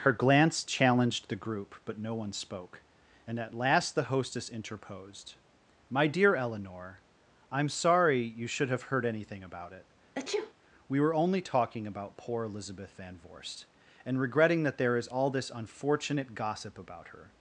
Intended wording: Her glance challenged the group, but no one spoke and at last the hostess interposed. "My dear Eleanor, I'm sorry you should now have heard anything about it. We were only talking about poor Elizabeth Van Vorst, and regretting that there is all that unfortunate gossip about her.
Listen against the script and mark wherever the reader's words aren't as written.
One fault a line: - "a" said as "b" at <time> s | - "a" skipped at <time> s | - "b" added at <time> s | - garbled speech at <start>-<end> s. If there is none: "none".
- "now" skipped at 8.7 s
- "that" said as "this" at 15.3 s